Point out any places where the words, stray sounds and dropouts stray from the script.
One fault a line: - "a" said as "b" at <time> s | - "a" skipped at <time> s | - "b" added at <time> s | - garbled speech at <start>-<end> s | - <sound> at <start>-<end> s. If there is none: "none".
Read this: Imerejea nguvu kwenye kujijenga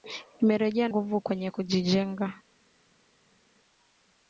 none